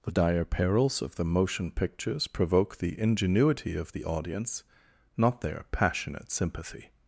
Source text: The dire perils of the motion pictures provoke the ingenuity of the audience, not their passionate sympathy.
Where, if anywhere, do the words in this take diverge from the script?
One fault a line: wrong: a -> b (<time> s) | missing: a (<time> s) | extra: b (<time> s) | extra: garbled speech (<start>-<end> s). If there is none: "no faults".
no faults